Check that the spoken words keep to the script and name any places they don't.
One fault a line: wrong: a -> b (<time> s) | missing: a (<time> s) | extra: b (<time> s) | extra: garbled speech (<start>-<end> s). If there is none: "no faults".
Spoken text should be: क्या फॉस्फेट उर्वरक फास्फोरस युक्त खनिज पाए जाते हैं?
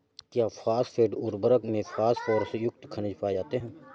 extra: में (1.7 s)